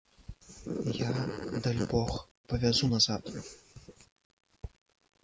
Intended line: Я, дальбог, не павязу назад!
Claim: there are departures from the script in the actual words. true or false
true